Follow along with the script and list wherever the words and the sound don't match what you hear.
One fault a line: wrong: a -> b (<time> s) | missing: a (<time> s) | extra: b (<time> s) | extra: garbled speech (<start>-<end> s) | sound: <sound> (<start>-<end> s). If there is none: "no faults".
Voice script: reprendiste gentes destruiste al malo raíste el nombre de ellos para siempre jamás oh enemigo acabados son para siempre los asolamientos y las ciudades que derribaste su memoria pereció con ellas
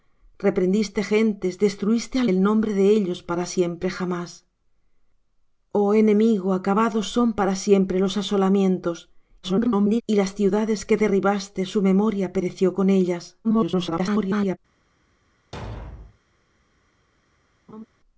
missing: malo raíste (2.3 s)
extra: garbled speech (9.4-10.0 s)
extra: garbled speech (13.4-14.6 s)
sound: thud (15.5-16.2 s)
sound: laugh (17.7-17.9 s)